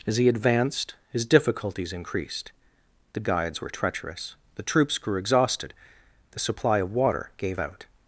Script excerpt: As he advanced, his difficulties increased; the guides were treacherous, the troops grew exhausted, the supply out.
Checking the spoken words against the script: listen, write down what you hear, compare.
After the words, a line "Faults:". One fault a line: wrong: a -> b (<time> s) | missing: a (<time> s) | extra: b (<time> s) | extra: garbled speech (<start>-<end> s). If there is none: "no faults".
As he advanced, his difficulties increased; the guides were treacherous, the troops grew exhausted, the supply of water gave out.
Faults:
extra: of water gave (6.8 s)